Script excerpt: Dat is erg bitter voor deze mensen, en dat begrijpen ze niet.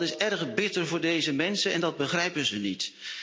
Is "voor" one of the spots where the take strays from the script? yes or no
no